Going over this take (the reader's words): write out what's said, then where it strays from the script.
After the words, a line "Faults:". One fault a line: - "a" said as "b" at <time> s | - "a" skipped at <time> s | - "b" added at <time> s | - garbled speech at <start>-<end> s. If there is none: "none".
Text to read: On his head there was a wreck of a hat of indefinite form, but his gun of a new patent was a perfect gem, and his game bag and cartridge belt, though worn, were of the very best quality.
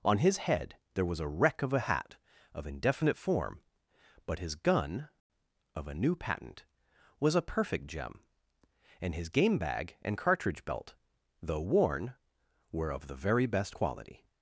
On his head there was a wreck of a hat of indefinite form, but his gun of a new patent was a perfect gem, and his game bag and cartridge belt, though worn, were of the very best quality.
Faults:
none